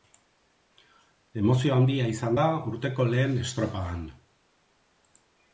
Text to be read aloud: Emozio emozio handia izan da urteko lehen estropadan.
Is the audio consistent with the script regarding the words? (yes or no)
no